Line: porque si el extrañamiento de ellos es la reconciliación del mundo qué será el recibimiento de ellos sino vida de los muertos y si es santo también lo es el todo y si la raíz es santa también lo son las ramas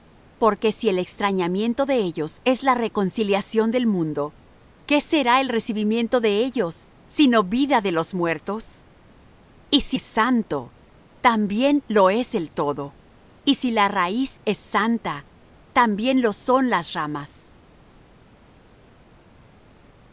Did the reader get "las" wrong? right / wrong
right